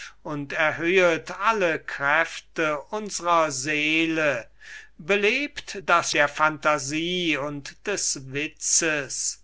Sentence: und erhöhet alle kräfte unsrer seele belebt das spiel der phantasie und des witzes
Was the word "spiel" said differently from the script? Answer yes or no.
yes